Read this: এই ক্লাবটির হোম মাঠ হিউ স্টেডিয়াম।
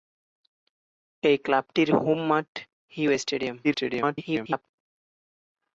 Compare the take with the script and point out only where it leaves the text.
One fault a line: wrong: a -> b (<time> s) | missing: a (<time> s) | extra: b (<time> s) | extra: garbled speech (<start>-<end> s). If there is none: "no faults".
extra: garbled speech (3.6-4.7 s)